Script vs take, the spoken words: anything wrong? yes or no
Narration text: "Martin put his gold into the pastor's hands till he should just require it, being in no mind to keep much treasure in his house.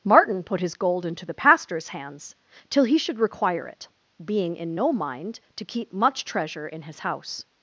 yes